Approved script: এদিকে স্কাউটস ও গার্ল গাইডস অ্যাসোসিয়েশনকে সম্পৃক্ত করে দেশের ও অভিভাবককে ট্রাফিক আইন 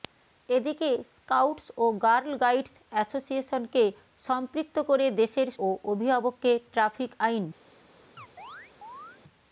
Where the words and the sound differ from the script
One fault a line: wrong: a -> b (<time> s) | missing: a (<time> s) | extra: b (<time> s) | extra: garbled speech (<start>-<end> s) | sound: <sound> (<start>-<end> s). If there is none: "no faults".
sound: chirp (8.2-9.2 s)